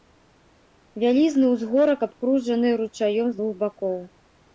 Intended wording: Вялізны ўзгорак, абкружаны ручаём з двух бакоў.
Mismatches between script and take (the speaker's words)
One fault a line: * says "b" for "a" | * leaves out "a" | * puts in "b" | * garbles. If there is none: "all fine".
all fine